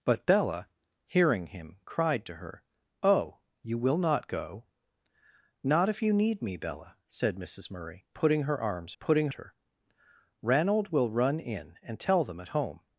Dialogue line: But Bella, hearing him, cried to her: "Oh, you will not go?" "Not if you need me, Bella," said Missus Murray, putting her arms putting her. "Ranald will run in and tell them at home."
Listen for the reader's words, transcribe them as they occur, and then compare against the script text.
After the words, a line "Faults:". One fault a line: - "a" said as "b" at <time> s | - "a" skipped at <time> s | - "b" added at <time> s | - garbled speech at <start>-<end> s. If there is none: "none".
But Bella, hearing him, cried to her: "Oh, you will not go?" "Not if you need me, Bella," said Missus Murray, putting her arms putting her. "Ranald will run in and tell them at home."
Faults:
none